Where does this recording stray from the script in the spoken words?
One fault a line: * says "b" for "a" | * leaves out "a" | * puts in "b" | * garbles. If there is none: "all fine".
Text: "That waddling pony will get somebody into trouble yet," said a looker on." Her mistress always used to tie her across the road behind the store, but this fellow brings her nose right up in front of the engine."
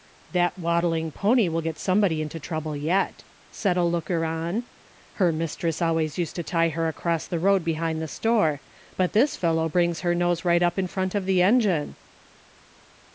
all fine